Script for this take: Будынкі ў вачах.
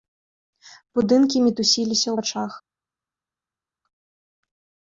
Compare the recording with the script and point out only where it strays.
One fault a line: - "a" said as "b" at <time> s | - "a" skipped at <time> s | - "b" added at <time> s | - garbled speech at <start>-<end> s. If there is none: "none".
- "мітусіліся" added at 1.4 s